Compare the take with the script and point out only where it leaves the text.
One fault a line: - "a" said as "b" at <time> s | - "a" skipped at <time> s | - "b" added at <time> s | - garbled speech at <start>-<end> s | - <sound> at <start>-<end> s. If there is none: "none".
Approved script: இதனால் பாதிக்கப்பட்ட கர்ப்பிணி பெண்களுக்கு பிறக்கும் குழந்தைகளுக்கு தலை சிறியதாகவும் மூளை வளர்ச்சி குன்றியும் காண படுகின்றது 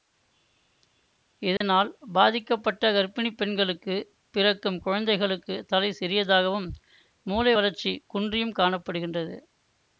- dropout at 1.6-1.6 s